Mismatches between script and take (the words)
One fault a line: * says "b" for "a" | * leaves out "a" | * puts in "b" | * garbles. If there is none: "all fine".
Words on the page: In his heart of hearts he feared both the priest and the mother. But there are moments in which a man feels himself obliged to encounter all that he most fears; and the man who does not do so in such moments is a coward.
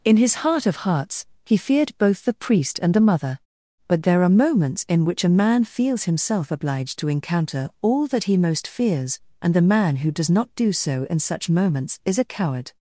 all fine